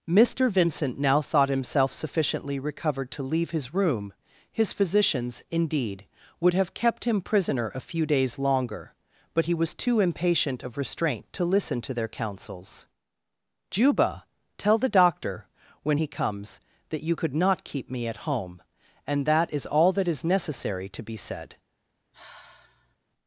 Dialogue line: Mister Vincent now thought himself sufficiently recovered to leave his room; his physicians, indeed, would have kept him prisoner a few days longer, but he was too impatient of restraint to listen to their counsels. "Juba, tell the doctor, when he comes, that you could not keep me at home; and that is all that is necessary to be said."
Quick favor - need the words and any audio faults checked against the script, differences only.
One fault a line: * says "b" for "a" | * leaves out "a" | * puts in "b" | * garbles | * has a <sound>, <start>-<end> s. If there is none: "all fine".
* has a sigh, 22.1-23.0 s